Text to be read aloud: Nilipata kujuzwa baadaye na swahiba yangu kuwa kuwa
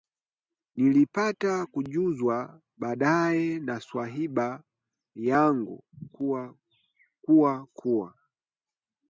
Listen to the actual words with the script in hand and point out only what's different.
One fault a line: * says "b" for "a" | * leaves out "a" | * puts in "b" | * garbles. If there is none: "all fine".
all fine